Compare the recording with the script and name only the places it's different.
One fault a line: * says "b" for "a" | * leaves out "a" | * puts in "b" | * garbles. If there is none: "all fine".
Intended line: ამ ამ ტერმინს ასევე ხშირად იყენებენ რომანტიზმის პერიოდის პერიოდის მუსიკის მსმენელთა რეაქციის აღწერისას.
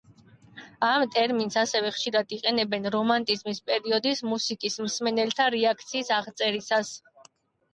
* leaves out "ამ"
* leaves out "პერიოდის"